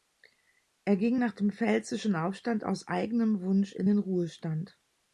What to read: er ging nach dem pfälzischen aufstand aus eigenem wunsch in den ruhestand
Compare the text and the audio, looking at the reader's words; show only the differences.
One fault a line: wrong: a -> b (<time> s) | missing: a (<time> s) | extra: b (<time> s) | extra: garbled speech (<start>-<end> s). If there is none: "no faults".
no faults